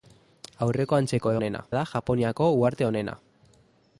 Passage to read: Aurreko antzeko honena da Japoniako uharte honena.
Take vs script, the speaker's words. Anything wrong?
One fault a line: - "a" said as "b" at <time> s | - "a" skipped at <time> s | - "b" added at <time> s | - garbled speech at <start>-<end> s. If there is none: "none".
none